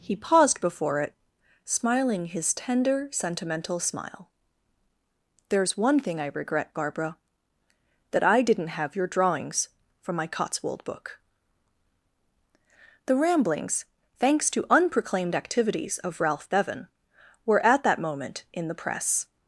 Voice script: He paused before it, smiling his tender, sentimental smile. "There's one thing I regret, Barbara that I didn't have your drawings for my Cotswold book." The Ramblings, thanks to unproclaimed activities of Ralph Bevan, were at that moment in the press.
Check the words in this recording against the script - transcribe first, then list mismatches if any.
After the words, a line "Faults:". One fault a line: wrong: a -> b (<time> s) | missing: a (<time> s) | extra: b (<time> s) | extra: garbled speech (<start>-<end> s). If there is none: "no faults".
He paused before it, smiling his tender, sentimental smile. "There's one thing I regret, Barbara that I didn't have your drawings from my Cotswold book." The Ramblings, thanks to unproclaimed activities of Ralph Bevan, were at that moment in the press.
Faults:
wrong: for -> from (10.0 s)